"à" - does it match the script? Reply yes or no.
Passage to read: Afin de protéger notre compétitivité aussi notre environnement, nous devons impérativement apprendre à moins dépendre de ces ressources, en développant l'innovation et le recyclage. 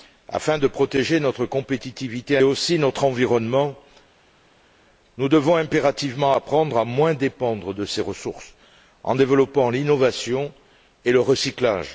yes